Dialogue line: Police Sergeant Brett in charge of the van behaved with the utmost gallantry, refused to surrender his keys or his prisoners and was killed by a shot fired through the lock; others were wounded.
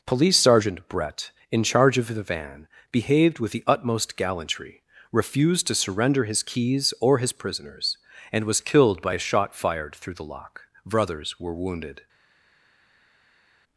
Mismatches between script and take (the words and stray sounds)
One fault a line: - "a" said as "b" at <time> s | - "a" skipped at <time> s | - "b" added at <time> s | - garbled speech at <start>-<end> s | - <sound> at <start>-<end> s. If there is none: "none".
- "others" said as "brothers" at 10.8 s